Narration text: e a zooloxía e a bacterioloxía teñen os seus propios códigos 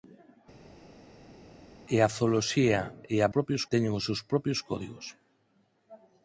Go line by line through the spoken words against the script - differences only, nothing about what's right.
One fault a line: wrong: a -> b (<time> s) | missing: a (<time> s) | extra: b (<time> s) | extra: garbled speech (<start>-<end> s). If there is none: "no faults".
wrong: bacterioloxía -> propios (3.3 s)